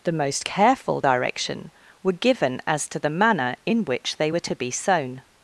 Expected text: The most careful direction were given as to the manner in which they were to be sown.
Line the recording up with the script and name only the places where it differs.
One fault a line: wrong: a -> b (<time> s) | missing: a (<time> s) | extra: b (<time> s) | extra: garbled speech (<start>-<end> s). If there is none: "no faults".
no faults